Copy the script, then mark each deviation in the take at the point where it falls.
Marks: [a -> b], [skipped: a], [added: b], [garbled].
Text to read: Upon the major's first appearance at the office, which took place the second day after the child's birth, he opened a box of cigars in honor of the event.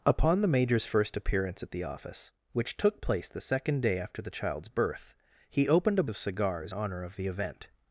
Upon the major's first appearance at the office, which took place the second day after the child's birth, he opened a [skipped: box] of cigars [skipped: in] honor of the event.